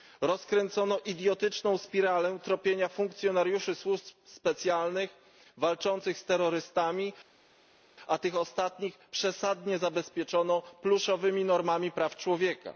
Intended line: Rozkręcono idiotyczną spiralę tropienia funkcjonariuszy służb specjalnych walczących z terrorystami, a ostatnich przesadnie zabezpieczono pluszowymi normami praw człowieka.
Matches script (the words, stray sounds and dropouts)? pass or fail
fail